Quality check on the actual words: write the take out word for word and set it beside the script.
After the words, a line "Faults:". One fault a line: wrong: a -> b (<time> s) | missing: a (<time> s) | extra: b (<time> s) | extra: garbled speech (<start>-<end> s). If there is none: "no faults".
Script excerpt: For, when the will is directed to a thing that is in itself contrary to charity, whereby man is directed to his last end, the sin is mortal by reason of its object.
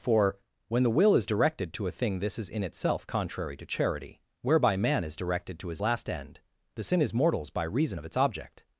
For, when the will is directed to a thing this is in itself contrary to charity, whereby man is directed to his last end, the sin is mortals by reason of its object.
Faults:
wrong: that -> this (2.2 s)
wrong: mortal -> mortals (7.1 s)